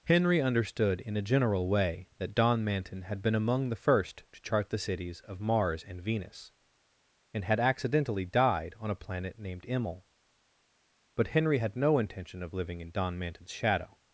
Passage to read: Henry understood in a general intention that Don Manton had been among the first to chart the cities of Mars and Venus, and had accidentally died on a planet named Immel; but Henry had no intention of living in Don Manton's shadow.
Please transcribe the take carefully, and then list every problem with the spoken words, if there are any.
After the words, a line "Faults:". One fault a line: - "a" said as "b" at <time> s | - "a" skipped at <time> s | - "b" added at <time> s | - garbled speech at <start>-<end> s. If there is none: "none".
Henry understood in a general way that Don Manton had been among the first to chart the cities of Mars and Venus, and had accidentally died on a planet named Immel; but Henry had no intention of living in Don Manton's shadow.
Faults:
- "intention" said as "way" at 1.7 s